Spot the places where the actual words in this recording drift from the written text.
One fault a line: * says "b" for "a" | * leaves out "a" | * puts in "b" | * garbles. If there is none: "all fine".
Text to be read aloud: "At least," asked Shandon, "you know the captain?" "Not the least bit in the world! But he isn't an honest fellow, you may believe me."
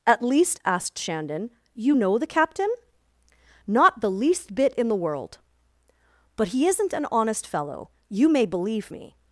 all fine